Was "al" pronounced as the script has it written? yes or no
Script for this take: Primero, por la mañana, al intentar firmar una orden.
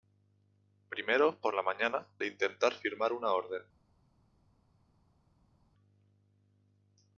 no